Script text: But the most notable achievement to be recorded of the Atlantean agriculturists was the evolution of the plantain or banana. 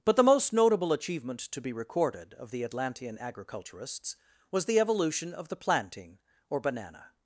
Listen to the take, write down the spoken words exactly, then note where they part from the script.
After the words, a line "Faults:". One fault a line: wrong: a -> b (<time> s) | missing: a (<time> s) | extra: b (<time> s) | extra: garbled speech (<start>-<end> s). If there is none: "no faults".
But the most notable achievement to be recorded of the Atlantean agriculturists was the evolution of the plantain or banana.
Faults:
no faults